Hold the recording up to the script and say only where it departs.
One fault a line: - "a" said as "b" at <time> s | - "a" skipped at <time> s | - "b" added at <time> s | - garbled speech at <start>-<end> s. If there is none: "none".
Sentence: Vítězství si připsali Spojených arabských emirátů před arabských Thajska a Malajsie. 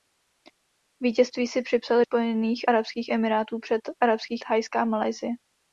none